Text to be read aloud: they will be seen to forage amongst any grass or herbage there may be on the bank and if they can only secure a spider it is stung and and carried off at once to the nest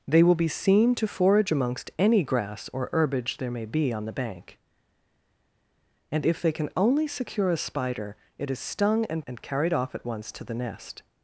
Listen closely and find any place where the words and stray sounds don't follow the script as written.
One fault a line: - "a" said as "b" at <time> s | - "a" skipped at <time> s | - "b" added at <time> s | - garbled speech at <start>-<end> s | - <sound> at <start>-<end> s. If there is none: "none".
none